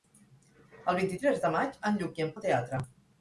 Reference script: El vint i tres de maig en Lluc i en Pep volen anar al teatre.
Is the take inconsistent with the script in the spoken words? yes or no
yes